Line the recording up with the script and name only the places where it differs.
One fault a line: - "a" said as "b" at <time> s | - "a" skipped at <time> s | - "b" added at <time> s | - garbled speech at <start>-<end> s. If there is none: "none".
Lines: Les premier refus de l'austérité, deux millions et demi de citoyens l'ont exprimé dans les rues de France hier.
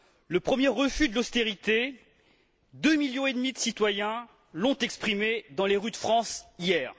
- "Les" said as "Le" at 0.3 s